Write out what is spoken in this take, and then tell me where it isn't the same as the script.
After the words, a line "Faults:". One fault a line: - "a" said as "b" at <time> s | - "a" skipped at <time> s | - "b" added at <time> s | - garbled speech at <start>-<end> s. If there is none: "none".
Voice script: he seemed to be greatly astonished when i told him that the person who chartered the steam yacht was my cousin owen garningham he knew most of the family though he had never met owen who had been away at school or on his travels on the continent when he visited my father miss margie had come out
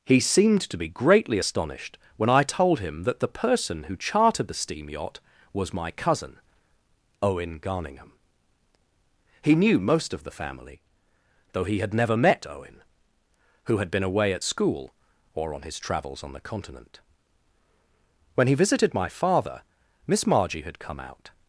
he seemed to be greatly astonished when i told him that the person who chartered the steam yacht was my cousin owen garningham he knew most of the family though he had never met owen who had been away at school or on his travels on the continent when he visited my father miss margie had come out
Faults:
none